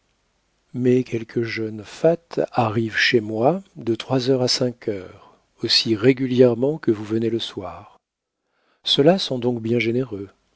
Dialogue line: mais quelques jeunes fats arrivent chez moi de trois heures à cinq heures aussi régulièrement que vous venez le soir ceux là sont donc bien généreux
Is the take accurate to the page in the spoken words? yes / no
yes